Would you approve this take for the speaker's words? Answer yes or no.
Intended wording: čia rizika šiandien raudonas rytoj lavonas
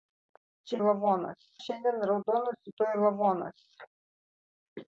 no